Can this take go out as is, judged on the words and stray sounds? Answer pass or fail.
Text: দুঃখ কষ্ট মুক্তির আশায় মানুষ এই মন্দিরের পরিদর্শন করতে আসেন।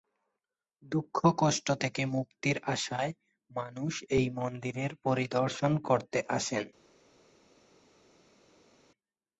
fail